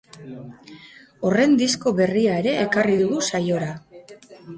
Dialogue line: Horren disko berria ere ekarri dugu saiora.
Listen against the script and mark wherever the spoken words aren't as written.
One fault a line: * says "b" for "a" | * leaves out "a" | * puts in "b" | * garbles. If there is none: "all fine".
all fine